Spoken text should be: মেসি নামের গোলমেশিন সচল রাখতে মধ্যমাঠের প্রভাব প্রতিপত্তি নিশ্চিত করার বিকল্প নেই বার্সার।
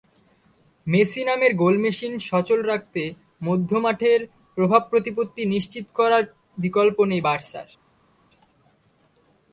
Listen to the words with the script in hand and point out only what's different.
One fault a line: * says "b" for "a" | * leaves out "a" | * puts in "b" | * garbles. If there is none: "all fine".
all fine